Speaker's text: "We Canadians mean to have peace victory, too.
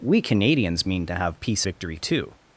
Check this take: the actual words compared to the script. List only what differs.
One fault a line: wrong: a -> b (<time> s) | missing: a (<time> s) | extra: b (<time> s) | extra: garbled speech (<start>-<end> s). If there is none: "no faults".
no faults